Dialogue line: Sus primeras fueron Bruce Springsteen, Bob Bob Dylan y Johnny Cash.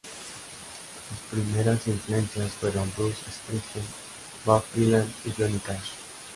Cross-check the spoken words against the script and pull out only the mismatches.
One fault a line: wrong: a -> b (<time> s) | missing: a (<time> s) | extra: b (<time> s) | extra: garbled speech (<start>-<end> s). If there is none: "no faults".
extra: influencias (1.9 s)
missing: Bob (4.6 s)